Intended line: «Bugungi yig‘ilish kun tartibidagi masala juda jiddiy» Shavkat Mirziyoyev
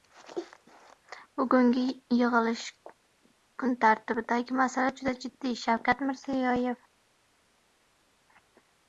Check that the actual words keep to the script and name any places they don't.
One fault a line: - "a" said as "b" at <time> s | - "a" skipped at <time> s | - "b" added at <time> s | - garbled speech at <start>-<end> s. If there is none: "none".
none